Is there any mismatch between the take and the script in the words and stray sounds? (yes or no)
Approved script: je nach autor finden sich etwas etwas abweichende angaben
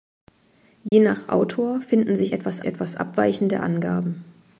yes